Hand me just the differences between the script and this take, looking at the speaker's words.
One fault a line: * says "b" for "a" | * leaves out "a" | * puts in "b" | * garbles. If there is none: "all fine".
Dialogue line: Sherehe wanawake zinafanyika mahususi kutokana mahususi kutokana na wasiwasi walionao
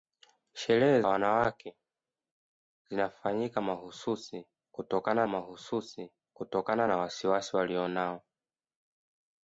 all fine